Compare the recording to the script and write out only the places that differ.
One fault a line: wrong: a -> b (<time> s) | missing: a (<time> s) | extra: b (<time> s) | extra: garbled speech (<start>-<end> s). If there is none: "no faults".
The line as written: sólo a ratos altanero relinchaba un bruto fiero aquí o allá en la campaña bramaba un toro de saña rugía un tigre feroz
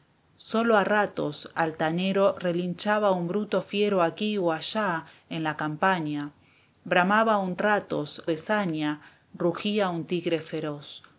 wrong: toro -> ratos (7.6 s)